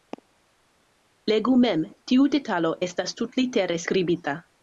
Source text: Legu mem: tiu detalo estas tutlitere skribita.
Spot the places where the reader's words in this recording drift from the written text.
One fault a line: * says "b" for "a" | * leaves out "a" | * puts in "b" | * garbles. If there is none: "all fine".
all fine